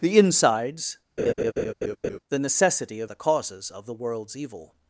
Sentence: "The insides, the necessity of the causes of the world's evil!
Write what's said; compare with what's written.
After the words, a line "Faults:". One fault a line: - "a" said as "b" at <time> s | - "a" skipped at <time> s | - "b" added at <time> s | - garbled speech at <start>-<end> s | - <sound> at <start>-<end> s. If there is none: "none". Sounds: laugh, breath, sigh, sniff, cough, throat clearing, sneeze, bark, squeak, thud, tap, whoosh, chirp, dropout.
"The insides, the necessity of the causes of the world's evil!
Faults:
- laugh at 1.2-2.2 s